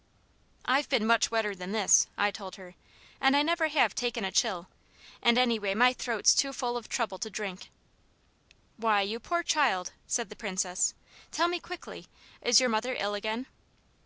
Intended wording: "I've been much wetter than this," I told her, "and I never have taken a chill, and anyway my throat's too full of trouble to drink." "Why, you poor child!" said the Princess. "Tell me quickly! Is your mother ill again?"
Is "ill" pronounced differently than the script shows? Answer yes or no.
no